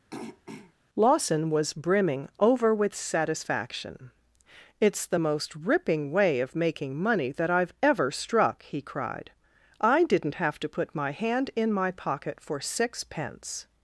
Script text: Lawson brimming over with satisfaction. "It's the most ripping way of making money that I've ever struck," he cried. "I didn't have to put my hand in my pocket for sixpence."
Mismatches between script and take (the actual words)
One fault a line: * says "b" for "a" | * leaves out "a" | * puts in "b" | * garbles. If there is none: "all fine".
* puts in "was"